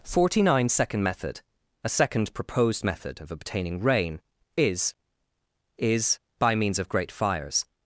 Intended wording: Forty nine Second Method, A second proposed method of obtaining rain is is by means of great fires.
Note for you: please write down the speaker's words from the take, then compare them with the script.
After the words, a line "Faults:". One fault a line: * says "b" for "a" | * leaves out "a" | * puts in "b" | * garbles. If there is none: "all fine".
Forty nine Second Method, A second proposed method of obtaining rain is is by means of great fires.
Faults:
all fine